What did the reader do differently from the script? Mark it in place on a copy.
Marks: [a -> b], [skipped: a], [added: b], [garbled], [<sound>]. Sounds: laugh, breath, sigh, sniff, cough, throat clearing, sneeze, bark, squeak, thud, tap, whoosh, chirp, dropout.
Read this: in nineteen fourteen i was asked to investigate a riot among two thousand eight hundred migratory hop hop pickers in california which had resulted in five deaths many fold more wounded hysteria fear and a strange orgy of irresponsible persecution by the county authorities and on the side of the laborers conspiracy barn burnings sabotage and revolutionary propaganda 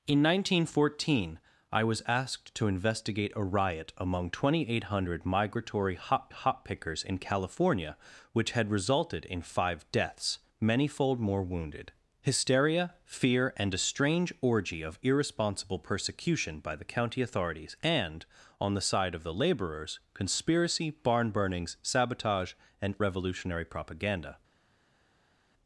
in nineteen fourteen i was asked to investigate a riot among two thousand eight hundred migratory hop hop pickers in california which had resulted in five deaths many fold more wounded hysteria fear and a strange orgy of irresponsible persecution by the county authorities and on the side of the laborers conspiracy barn burnings sabotage and revolutionary propaganda